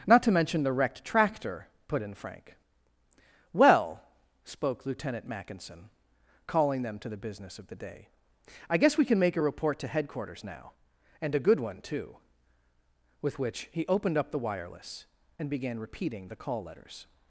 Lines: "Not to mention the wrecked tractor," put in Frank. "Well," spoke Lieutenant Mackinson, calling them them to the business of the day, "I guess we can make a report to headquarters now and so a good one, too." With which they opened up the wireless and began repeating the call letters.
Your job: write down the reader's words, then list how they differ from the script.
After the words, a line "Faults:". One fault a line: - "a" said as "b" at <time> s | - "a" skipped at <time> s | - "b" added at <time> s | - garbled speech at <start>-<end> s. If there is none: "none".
"Not to mention the wrecked tractor," put in Frank. "Well," spoke Lieutenant Mackinson, calling them to the business of the day, "I guess we can make a report to headquarters now and a good one, too." With which he opened up the wireless and began repeating the call letters.
Faults:
- "them" skipped at 7.0 s
- "so" skipped at 11.3 s
- "they" said as "he" at 13.7 s